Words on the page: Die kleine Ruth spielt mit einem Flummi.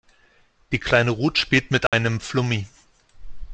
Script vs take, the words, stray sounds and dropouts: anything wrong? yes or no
yes